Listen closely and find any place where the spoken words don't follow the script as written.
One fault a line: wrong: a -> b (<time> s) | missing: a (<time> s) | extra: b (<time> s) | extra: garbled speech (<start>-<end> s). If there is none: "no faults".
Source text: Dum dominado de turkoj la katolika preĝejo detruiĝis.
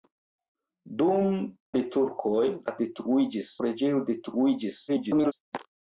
missing: dominado (1.2 s)
wrong: katolika -> detruiĝis (2.8 s)
extra: garbled speech (4.9-5.3 s)